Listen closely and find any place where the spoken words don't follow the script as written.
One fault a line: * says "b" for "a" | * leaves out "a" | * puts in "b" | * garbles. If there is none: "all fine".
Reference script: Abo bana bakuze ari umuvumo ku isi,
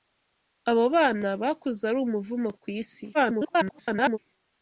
* garbles